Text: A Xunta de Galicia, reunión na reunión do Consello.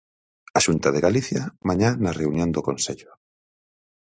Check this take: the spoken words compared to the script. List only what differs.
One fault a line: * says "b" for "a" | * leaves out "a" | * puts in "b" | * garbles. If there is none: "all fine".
* says "mañá" for "reunión"